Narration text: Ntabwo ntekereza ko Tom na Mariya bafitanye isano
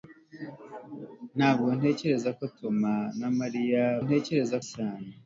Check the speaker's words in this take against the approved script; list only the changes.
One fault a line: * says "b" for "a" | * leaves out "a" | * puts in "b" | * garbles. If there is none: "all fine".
* says "ntekereza" for "bafitanye"